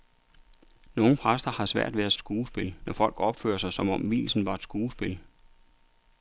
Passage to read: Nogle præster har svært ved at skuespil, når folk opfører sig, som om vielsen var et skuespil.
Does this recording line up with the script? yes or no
yes